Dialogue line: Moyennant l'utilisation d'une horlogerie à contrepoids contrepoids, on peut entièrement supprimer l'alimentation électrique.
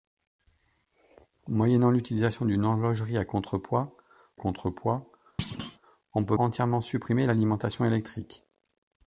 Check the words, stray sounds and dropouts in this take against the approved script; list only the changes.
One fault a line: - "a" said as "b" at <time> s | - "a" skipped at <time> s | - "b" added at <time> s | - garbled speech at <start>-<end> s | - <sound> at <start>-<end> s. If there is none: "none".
- thud at 5.4-5.8 s